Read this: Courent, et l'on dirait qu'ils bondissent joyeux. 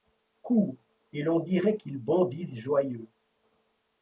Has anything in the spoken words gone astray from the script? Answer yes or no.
no